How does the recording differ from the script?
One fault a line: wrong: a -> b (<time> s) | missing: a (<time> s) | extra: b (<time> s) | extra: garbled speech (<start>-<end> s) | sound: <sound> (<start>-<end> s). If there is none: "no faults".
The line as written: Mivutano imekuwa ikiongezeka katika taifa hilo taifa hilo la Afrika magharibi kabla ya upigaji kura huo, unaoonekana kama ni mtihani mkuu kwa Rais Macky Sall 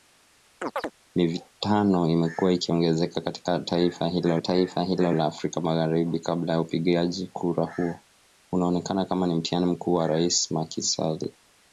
sound: chirp (0.6-0.9 s)